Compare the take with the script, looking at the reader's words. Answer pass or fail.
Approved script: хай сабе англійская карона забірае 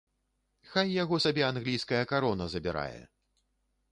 fail